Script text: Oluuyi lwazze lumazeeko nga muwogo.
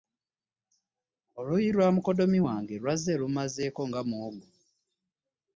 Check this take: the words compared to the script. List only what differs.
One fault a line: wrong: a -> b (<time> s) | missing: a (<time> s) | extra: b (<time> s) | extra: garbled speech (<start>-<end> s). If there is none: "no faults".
extra: lwa mukoddomi wange (1.8 s)